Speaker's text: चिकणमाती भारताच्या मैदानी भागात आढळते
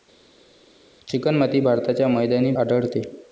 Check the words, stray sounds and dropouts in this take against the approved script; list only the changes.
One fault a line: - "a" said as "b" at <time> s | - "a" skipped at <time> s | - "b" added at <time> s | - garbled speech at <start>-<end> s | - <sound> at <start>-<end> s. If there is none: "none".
- "भागात" skipped at 2.5 s